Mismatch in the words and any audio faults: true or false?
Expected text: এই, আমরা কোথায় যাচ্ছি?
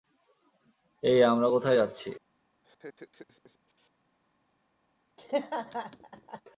true